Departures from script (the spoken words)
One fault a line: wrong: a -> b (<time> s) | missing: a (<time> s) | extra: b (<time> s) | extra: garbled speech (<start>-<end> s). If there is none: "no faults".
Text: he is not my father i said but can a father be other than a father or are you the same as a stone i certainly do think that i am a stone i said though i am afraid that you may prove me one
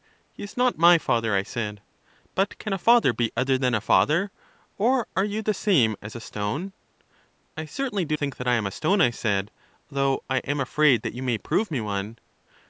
no faults